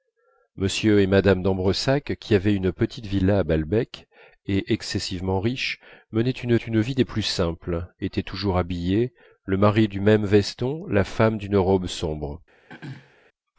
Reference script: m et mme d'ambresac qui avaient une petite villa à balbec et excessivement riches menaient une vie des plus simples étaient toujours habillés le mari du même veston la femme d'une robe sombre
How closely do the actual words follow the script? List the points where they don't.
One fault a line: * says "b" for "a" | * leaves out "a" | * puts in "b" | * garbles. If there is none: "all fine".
* puts in "une"